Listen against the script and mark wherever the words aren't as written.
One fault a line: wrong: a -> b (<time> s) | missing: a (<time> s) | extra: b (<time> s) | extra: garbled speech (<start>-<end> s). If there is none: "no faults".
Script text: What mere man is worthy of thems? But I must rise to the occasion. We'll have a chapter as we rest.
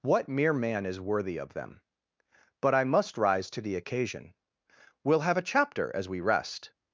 wrong: thems -> them (1.5 s)